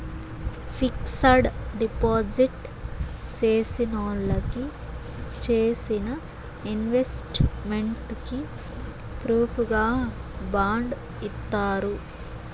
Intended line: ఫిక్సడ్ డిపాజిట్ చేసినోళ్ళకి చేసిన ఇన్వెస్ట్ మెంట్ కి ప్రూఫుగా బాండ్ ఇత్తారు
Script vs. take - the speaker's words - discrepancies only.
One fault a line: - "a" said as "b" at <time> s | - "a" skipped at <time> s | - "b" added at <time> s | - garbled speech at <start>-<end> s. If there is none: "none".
none